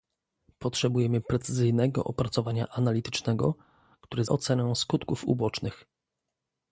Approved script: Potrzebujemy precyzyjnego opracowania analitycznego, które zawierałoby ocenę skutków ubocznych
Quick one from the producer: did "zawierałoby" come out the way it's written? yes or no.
no